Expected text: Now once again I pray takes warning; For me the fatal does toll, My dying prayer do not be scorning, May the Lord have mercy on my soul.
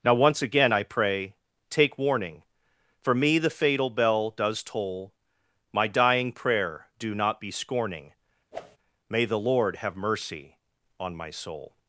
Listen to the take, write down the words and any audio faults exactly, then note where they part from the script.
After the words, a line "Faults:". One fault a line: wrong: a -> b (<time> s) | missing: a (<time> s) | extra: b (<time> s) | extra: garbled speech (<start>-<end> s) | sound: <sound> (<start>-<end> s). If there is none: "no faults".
Now once again I pray take warning; For me the fatal bell does toll, My dying prayer do not be scorning, May the Lord have mercy on my soul.
Faults:
wrong: takes -> take (1.7 s)
extra: bell (3.9 s)
sound: whoosh (8.5-8.8 s)